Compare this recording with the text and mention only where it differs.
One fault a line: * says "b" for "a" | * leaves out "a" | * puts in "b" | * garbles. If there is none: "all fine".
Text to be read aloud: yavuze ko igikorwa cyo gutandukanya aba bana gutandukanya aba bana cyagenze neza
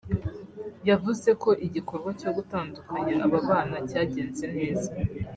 * leaves out "gutandukanya aba bana"